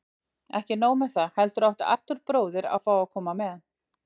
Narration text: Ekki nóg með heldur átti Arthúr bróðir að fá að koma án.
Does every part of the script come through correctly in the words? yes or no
no